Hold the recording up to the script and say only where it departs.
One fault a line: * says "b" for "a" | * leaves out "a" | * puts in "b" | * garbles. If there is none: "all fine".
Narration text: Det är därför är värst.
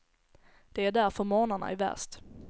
* puts in "morgnarna"